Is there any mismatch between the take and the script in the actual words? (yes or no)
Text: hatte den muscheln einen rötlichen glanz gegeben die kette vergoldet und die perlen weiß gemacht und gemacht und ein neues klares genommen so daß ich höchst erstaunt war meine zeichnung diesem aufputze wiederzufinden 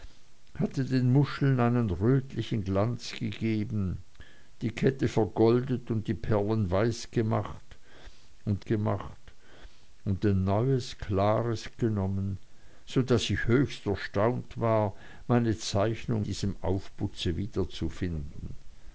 no